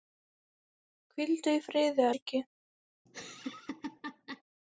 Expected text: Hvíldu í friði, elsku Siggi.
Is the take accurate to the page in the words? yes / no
no